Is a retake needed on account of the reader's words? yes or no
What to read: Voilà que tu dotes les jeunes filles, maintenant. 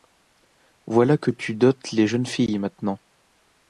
no